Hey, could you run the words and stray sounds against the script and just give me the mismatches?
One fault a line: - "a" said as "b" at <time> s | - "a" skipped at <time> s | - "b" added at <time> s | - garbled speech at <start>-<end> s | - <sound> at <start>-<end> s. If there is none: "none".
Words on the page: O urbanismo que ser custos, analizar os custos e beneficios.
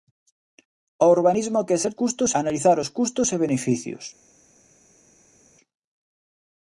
none